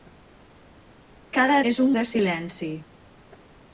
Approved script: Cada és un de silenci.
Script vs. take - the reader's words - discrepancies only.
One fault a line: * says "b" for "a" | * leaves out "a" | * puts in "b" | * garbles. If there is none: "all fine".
all fine